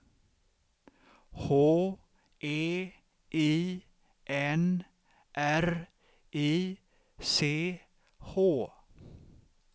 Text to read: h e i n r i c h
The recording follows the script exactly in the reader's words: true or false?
true